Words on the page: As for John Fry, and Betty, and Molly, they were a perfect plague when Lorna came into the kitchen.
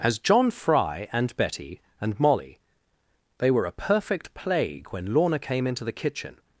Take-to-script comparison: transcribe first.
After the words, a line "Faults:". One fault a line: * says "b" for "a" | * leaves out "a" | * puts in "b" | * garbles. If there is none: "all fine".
As John Fry, and Betty, and Molly, they were a perfect plague when Lorna came into the kitchen.
Faults:
* leaves out "for"